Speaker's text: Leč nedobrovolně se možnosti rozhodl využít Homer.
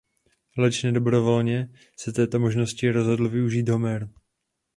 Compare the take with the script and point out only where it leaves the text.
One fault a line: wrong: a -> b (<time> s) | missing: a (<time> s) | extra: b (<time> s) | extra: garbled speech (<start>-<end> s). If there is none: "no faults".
extra: této (2.1 s)